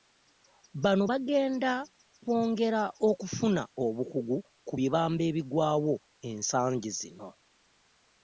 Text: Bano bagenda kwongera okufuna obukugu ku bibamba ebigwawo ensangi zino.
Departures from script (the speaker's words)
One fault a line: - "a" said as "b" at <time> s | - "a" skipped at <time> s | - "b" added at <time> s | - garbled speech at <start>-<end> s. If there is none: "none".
none